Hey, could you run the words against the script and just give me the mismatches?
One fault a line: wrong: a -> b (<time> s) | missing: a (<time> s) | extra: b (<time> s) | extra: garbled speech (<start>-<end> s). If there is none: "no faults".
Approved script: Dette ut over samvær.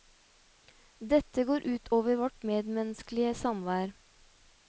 extra: går (1.5 s)
extra: vårt medmenneskelige (2.2 s)